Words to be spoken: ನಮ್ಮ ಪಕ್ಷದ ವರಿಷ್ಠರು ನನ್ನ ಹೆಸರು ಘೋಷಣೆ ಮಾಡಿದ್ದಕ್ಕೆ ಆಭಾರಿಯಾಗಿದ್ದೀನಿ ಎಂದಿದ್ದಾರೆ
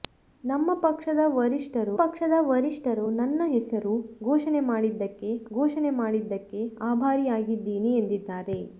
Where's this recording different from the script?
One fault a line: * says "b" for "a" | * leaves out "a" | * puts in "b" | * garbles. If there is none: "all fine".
* puts in "ಪಕ್ಷದ ವರಿಷ್ಠರು"
* puts in "ಘೋಷಣೆ ಮಾಡಿದ್ದಕ್ಕೆ"